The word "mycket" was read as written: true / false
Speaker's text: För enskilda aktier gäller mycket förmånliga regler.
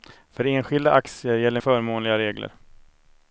false